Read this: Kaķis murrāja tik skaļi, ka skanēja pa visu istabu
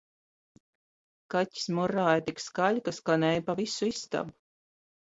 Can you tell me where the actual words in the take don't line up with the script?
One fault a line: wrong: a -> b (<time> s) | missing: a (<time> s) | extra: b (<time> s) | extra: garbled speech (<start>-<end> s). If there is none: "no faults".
no faults